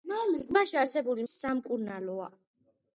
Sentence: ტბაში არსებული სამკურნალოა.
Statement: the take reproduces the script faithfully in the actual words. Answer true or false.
true